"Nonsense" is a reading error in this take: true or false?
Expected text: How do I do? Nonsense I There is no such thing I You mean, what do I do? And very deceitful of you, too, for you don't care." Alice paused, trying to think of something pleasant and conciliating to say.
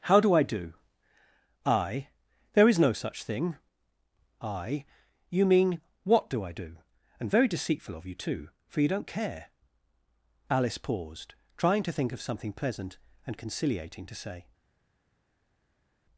true